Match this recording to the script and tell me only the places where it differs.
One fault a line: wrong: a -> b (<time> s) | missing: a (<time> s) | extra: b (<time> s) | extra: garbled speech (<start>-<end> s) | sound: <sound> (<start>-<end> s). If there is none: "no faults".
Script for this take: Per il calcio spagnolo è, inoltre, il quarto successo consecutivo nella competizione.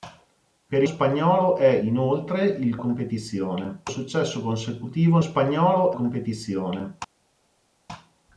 missing: il calcio (0.8 s)
wrong: quarto -> competizione (2.8 s)
wrong: nella -> spagnolo (5.2 s)